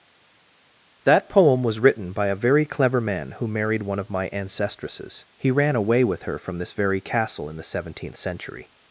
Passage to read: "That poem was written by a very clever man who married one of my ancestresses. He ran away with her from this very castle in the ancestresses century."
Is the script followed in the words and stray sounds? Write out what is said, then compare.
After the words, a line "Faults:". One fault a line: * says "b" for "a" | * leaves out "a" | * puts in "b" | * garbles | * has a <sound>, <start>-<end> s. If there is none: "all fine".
"That poem was written by a very clever man who married one of my ancestresses. He ran away with her from this very castle in the seventeenth century."
Faults:
* says "seventeenth" for "ancestresses"